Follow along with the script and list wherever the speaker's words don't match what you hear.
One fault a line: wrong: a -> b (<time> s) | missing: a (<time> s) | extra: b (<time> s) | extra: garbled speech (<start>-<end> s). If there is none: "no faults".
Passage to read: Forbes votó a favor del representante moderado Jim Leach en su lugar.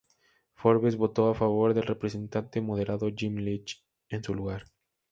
no faults